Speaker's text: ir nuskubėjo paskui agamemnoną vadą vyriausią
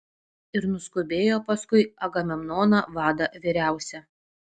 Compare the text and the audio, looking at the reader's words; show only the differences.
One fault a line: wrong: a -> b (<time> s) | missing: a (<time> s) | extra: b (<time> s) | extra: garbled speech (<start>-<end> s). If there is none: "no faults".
no faults